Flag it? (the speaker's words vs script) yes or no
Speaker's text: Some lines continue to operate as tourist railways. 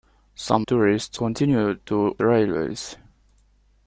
yes